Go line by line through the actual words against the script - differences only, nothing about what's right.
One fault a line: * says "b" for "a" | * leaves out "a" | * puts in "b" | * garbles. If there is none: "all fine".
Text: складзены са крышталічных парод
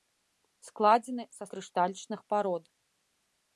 all fine